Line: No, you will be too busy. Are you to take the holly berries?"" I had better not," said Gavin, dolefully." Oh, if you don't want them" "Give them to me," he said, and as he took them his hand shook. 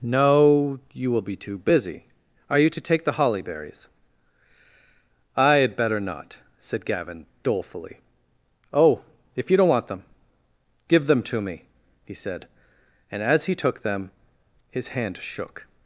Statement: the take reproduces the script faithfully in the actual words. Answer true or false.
true